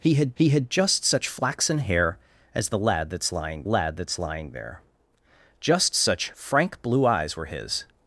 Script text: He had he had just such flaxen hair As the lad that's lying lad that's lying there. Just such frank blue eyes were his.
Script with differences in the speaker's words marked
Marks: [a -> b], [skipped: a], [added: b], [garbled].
He had he had just such flaxen hair As the lad that's lying lad that's lying there. Just such frank blue eyes were his.